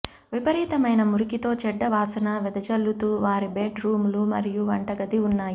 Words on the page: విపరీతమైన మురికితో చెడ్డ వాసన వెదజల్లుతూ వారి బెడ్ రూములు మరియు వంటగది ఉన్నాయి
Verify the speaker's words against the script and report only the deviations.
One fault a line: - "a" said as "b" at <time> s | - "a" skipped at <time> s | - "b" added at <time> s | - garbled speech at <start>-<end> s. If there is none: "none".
none